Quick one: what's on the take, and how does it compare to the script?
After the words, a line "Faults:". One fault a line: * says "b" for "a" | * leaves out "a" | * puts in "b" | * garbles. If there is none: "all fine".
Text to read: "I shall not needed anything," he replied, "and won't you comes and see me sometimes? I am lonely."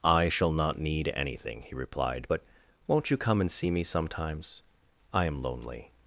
"I shall not need anything," he replied, "but won't you come and see me sometimes? I am lonely."
Faults:
* says "need" for "needed"
* says "but" for "and"
* says "come" for "comes"